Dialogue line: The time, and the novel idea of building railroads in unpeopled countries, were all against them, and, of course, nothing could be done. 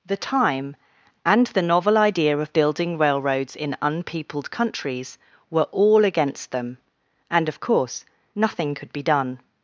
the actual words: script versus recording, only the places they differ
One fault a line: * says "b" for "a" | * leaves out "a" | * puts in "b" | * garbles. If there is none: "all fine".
all fine